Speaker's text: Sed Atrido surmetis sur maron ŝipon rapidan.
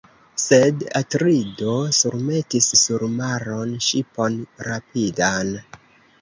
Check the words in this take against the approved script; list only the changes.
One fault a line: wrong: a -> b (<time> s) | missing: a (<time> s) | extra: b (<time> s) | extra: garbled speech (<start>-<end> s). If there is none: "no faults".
no faults